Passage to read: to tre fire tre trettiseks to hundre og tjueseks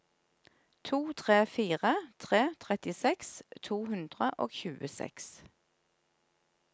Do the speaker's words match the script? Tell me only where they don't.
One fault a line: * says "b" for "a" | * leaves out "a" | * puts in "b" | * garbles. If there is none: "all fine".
all fine